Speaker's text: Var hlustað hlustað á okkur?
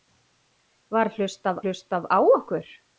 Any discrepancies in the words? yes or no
no